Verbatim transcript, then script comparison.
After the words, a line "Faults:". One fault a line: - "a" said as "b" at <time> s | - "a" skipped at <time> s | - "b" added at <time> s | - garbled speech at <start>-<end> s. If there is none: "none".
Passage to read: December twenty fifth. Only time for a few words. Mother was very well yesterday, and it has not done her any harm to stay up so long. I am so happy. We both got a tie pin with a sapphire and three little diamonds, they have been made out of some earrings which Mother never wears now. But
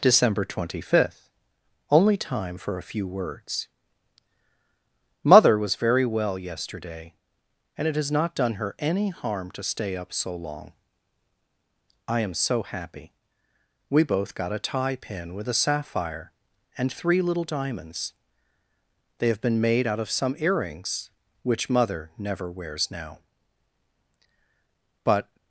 December twenty fifth. Only time for a few words. Mother was very well yesterday, and it has not done her any harm to stay up so long. I am so happy. We both got a tie pin with a sapphire and three little diamonds, they have been made out of some earrings which Mother never wears now. But
Faults:
none